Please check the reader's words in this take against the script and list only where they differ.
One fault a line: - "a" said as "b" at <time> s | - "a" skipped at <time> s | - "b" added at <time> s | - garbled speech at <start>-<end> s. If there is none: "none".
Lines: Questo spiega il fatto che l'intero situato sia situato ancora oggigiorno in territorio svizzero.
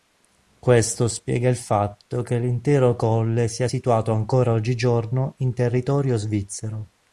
- "situato" said as "colle" at 3.0 s